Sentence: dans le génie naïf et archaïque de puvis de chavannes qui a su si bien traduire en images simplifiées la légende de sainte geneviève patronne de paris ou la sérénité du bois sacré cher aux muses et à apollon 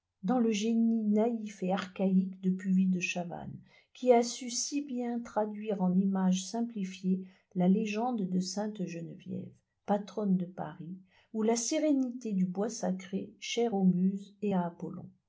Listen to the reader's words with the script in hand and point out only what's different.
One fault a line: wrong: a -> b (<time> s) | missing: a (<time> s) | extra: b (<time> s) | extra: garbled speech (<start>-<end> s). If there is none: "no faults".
no faults